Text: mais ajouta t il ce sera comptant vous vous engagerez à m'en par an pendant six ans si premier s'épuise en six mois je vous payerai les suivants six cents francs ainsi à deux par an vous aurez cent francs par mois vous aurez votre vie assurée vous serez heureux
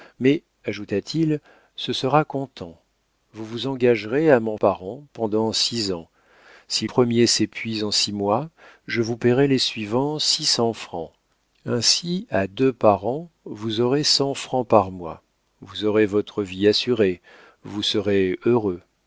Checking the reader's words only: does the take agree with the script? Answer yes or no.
yes